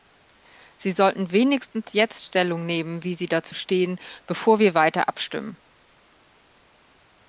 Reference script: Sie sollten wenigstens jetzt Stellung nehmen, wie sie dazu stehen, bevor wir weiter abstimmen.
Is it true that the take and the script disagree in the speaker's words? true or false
false